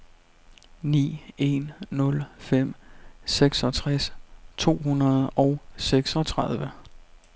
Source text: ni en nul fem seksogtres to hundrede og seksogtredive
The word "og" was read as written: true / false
true